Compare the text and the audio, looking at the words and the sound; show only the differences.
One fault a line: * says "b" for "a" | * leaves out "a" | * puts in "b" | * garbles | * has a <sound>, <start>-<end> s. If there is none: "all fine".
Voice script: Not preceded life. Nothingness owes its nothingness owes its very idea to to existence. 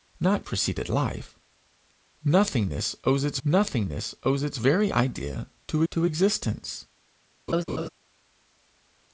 * has a laugh, 7.5-7.9 s